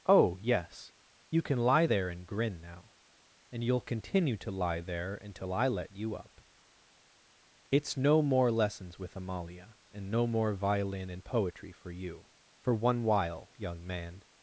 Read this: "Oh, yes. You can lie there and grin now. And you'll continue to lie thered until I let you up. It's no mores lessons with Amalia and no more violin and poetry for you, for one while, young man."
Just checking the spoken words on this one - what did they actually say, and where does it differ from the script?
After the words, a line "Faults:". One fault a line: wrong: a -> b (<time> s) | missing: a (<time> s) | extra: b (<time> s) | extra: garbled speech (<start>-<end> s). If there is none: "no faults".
"Oh, yes. You can lie there and grin now. And you'll continue to lie there until I let you up. It's no more lessons with Amalia and no more violin and poetry for you, for one while, young man."
Faults:
wrong: thered -> there (4.8 s)
wrong: mores -> more (8.2 s)